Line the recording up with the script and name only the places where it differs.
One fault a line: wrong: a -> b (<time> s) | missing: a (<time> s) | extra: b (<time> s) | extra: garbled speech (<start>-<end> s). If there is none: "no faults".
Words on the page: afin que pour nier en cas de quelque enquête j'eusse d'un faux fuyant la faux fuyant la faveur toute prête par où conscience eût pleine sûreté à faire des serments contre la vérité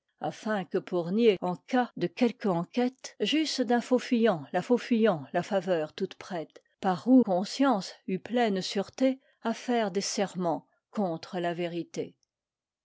no faults